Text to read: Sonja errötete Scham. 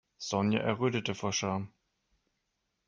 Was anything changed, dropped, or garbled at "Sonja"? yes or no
no